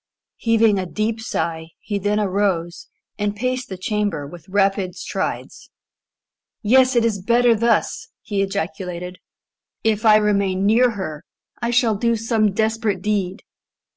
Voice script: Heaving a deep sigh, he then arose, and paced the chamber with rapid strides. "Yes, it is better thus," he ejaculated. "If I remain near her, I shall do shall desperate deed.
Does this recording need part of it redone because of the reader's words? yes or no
yes